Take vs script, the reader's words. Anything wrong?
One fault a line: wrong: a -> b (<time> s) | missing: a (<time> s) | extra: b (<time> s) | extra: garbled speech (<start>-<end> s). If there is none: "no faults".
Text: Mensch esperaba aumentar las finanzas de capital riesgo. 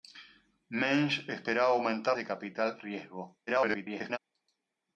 missing: las finanzas (2.2 s)
extra: garbled speech (3.5-4.2 s)